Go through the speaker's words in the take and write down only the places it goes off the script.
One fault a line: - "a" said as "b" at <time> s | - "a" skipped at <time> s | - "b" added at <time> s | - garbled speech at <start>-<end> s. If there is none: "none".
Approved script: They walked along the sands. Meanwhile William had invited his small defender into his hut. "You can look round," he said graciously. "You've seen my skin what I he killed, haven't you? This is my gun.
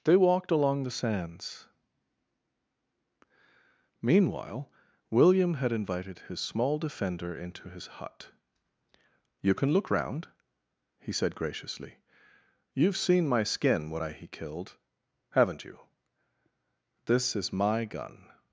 - "what" said as "when" at 13.9 s